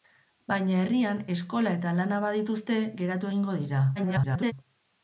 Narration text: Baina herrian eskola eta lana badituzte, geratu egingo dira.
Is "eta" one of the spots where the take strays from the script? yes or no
no